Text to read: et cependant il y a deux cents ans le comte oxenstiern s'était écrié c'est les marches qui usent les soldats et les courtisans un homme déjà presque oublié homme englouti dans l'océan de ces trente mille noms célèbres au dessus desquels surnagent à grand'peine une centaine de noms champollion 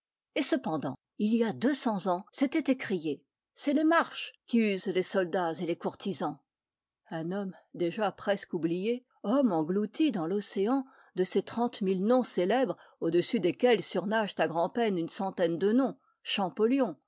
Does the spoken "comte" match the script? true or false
false